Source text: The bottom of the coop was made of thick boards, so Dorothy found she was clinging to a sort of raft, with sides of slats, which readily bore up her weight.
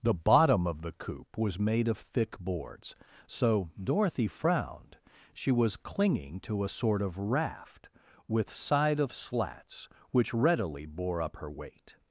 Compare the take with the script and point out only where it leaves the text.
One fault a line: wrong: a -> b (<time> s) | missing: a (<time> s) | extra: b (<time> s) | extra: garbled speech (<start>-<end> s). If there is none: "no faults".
wrong: found -> frowned (4.3 s)
wrong: sides -> side (8.5 s)